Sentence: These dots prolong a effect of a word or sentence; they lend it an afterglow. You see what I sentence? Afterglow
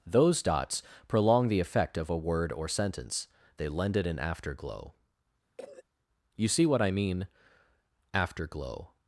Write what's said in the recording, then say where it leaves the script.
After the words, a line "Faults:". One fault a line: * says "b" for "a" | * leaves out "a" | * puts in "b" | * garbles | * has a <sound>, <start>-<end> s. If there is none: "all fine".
Those dots prolong the effect of a word or sentence; they lend it an afterglow. You see what I mean? Afterglow
Faults:
* says "Those" for "These"
* says "the" for "a"
* has a cough, 5.6-5.8 s
* says "mean" for "sentence"